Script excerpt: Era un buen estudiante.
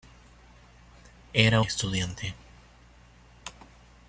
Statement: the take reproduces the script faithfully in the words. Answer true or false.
false